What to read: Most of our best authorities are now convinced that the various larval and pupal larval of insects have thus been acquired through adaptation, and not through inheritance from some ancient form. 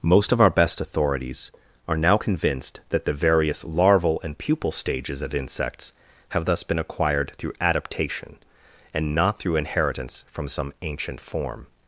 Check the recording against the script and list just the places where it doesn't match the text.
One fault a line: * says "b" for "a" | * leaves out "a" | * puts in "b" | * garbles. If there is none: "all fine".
* says "stages" for "larval"